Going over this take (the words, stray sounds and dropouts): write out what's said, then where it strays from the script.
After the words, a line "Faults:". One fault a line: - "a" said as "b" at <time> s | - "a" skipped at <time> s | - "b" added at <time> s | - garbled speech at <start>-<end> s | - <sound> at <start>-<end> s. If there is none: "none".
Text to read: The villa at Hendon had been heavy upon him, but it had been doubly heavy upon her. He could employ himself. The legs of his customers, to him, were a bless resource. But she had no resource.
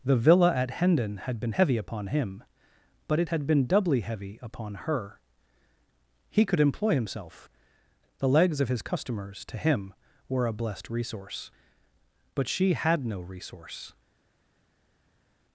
The villa at Hendon had been heavy upon him, but it had been doubly heavy upon her. He could employ himself. The legs of his customers, to him, were a blessed resource. But she had no resource.
Faults:
- "bless" said as "blessed" at 10.5 s